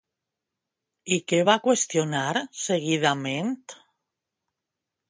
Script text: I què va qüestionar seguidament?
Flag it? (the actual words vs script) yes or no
no